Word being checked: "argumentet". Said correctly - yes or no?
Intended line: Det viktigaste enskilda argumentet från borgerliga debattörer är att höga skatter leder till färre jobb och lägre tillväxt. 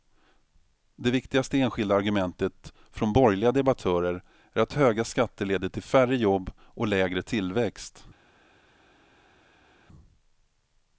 yes